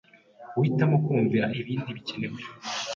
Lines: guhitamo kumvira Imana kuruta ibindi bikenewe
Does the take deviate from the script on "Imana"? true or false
true